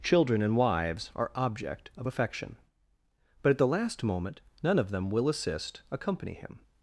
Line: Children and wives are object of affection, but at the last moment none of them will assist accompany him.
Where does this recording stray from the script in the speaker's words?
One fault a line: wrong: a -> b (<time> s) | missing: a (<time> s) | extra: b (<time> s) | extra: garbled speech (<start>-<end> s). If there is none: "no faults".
no faults